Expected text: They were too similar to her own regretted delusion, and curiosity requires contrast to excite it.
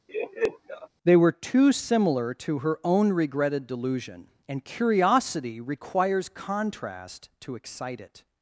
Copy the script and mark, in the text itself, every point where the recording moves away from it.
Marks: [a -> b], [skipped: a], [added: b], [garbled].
They were too similar to her own regretted delusion, and curiosity requires contrast to excite it.